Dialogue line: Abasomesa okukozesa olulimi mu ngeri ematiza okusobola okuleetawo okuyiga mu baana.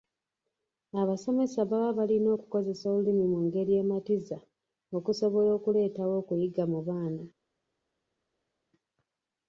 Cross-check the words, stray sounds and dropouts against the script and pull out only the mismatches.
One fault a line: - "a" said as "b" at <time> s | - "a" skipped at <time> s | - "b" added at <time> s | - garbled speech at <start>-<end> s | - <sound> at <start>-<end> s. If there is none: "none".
- "baba balina" added at 1.7 s